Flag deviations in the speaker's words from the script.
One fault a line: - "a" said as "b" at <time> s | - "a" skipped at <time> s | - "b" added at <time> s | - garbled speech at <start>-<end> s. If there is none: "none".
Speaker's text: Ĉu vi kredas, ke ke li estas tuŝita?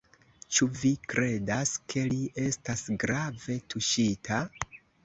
- "ke" skipped at 2.1 s
- "grave" added at 3.0 s